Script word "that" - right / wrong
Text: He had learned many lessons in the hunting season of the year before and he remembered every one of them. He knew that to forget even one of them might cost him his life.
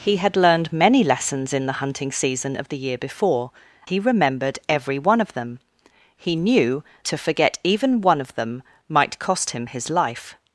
wrong